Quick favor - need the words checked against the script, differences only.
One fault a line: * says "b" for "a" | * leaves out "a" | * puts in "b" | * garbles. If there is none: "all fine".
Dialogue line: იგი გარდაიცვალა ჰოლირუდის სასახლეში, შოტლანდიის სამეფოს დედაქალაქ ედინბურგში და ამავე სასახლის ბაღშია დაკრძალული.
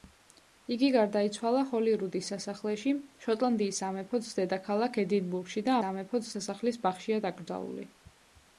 * says "სამეფოს" for "ამავე"